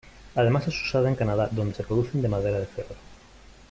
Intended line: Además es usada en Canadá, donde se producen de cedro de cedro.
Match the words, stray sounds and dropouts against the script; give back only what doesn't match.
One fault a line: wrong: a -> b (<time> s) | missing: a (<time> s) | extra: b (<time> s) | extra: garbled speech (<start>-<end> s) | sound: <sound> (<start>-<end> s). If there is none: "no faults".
wrong: cedro -> madera (2.3 s)